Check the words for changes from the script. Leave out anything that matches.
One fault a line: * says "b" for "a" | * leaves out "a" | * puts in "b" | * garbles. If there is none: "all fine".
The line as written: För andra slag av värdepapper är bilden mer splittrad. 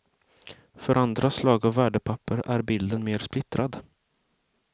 all fine